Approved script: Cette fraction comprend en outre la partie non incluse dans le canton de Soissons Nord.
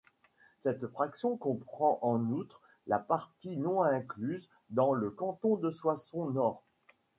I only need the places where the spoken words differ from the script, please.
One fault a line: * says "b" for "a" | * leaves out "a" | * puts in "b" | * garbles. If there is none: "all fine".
all fine